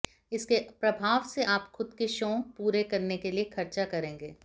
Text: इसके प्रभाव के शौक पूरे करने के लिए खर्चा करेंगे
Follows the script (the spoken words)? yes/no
no